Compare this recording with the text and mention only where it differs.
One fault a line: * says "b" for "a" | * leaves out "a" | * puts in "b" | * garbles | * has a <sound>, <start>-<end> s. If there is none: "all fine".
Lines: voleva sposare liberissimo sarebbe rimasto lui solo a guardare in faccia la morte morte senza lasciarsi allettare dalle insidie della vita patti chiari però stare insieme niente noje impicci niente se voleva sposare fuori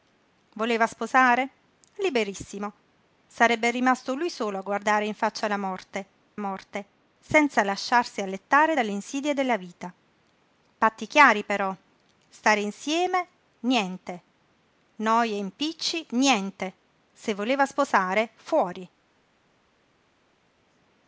all fine